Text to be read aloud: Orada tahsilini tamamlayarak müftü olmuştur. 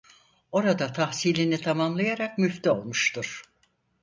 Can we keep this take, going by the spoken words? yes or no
yes